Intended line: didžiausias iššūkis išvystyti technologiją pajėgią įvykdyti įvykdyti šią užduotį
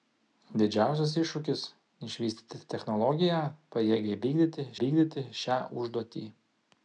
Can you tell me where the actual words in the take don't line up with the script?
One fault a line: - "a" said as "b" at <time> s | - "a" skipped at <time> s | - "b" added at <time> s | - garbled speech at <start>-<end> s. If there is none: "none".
none